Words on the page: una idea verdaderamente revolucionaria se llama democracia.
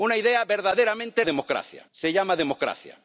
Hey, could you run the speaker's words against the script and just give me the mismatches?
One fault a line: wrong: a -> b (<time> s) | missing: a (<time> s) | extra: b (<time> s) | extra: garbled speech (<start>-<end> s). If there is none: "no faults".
wrong: revolucionaria -> democracia (1.2 s)